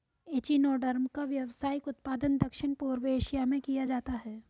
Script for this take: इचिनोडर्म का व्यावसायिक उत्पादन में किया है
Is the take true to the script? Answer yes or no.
no